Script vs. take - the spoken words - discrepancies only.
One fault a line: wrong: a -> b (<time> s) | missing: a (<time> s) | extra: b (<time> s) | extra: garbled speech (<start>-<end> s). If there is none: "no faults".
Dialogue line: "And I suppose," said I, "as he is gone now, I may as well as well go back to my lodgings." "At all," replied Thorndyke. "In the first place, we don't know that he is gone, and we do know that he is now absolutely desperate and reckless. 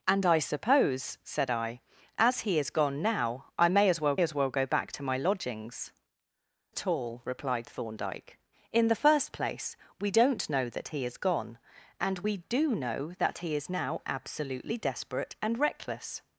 no faults